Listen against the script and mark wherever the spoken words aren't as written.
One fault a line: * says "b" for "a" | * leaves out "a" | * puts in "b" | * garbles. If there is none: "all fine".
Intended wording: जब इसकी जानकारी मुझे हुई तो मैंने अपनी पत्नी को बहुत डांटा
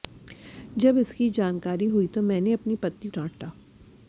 * leaves out "मुझे"
* leaves out "को बहुत"